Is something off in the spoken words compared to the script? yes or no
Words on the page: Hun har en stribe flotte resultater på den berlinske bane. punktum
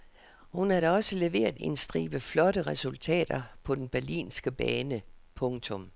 yes